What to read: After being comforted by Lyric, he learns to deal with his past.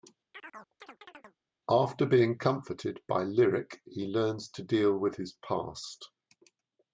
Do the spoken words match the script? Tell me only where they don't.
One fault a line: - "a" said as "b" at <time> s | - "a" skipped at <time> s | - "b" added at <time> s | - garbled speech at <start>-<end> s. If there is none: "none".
none